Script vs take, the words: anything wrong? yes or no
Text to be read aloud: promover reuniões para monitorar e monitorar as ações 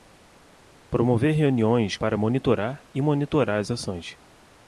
no